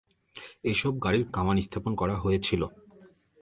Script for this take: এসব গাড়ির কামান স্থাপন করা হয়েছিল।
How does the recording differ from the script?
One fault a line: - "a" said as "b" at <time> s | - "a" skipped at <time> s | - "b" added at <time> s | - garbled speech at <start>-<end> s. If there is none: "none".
none